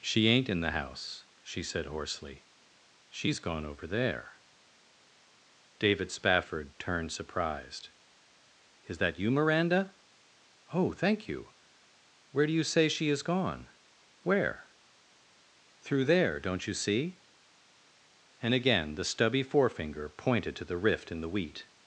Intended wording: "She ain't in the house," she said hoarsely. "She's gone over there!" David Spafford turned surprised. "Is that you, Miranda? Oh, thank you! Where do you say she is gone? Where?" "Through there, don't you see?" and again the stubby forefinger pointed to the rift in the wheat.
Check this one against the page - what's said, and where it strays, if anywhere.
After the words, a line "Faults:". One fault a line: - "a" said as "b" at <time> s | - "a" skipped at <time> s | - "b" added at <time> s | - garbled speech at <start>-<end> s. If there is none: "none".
"She ain't in the house," she said hoarsely. "She's gone over there!" David Spafford turned surprised. "Is that you, Miranda? Oh, thank you! Where do you say she is gone? Where?" "Through there, don't you see?" and again the stubby forefinger pointed to the rift in the wheat.
Faults:
none